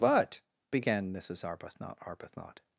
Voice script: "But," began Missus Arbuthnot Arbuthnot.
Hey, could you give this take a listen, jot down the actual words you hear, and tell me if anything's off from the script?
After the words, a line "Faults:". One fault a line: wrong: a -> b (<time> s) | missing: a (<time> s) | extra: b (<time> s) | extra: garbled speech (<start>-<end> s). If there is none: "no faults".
"But," began Missus Arbuthnot Arbuthnot.
Faults:
no faults